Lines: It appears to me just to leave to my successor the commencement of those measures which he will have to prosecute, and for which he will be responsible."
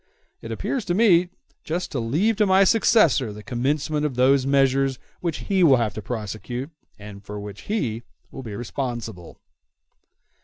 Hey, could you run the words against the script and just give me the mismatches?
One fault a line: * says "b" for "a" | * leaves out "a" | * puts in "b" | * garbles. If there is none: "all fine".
all fine